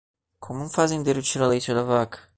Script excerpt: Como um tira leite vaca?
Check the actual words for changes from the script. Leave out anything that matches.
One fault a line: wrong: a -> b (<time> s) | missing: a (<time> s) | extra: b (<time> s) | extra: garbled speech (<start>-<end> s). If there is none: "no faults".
extra: fazendeiro (0.7 s)
extra: da (1.7 s)